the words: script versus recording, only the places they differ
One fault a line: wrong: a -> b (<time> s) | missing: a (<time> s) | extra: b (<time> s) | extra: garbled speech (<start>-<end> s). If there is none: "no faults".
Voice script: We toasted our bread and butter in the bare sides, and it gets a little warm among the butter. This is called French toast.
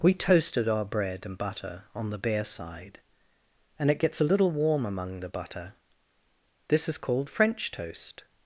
wrong: in -> on (1.9 s)
wrong: sides -> side (2.4 s)